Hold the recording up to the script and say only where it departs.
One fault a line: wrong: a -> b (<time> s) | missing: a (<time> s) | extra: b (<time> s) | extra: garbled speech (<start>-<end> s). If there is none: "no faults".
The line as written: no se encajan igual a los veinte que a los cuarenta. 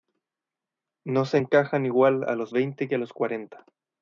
no faults